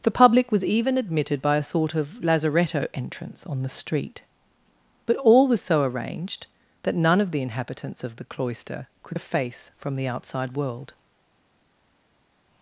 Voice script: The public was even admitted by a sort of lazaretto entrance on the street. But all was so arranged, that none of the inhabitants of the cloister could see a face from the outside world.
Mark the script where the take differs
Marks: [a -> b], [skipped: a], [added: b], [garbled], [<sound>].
The public was even admitted by a sort of lazaretto entrance on the street. But all was so arranged, that none of the inhabitants of the cloister could [skipped: see] a face from the outside world.